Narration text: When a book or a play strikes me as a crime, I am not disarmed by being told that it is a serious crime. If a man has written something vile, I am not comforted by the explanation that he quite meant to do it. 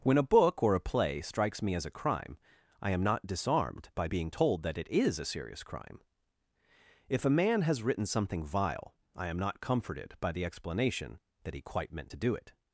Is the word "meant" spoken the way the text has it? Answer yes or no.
yes